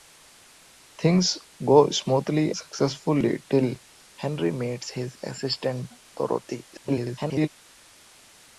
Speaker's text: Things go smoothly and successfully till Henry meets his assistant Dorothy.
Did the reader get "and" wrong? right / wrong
wrong